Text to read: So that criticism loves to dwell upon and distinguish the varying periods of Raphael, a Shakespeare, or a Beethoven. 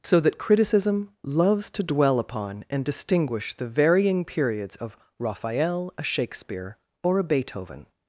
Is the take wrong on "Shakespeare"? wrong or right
right